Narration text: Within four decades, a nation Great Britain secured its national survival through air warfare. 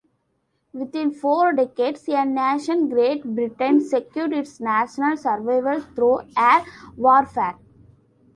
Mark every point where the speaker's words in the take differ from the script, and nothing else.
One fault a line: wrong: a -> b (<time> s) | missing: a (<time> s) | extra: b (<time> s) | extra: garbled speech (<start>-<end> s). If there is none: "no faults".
no faults